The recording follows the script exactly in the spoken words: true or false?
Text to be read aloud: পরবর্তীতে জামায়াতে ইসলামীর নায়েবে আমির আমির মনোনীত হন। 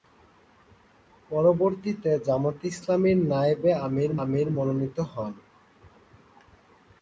true